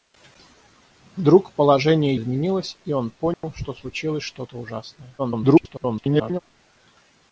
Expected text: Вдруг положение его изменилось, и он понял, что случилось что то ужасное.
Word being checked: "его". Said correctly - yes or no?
no